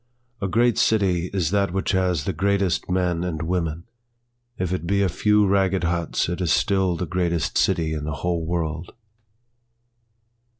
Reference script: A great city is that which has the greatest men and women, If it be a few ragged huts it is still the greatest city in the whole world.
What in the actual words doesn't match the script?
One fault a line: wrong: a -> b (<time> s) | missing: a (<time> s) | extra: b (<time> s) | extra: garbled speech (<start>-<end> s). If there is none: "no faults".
no faults